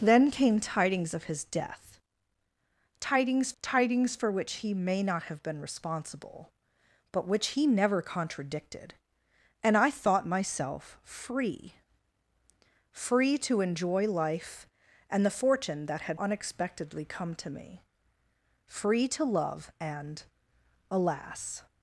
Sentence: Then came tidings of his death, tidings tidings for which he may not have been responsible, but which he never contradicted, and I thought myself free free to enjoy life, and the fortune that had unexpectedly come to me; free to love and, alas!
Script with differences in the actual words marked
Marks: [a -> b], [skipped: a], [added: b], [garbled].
Then came tidings of his death, tidings tidings for which he may not have been responsible, but which he never contradicted, and I thought myself free free to enjoy life, and the fortune that had unexpectedly come to me; free to love and, alas!